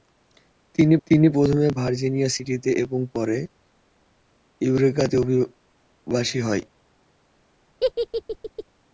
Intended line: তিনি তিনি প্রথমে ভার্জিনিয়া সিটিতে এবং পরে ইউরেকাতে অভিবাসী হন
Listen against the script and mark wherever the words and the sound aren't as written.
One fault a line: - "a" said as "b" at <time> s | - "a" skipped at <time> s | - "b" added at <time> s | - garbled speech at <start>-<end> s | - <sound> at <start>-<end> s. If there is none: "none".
- laugh at 7.8-8.6 s